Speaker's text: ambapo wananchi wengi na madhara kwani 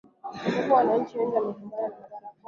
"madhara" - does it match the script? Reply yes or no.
yes